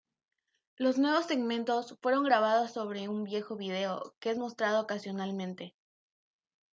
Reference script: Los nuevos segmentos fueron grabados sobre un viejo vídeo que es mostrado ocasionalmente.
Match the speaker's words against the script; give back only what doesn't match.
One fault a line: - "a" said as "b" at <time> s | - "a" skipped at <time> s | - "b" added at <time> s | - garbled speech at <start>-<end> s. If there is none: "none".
none